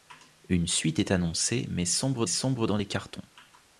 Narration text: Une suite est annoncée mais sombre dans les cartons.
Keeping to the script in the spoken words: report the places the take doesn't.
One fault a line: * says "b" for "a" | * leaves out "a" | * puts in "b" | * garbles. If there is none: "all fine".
* puts in "sombre"